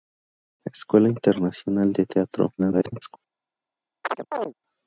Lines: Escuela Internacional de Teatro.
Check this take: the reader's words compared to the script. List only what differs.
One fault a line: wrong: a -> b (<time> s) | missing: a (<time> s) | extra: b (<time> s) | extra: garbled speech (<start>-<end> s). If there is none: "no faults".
extra: garbled speech (2.6-3.2 s)